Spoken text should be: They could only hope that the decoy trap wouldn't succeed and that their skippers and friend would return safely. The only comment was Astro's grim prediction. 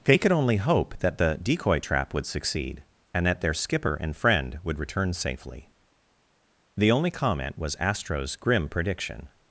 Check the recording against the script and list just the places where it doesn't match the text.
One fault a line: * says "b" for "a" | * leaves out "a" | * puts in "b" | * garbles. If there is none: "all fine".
* says "would" for "wouldn't"
* says "skipper" for "skippers"